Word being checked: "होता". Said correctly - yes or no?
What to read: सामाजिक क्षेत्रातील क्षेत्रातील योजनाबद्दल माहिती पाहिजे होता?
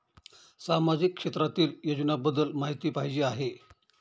no